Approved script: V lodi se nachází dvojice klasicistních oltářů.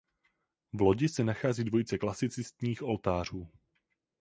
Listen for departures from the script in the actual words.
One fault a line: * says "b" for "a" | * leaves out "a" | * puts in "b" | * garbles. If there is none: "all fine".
all fine